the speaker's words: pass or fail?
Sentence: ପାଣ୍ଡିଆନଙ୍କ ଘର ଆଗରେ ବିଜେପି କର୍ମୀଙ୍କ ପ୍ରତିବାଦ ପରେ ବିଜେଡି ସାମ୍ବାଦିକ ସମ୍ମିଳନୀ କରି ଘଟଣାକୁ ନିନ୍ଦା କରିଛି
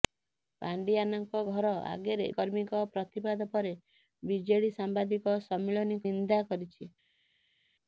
fail